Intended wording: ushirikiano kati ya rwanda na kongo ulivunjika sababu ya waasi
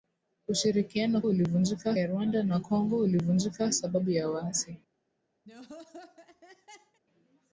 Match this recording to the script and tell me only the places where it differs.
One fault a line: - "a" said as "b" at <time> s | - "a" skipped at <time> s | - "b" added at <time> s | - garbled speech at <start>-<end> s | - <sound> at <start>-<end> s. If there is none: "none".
- "kati" said as "ulivunjika" at 1.2 s
- laugh at 5.5-7.0 s